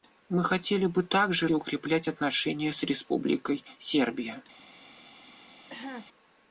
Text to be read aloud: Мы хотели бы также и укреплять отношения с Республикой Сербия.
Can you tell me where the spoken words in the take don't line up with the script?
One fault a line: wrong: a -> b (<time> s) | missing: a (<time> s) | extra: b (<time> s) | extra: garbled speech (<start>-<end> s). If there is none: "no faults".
no faults